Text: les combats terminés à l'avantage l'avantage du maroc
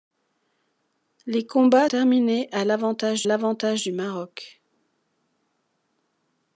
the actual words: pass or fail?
pass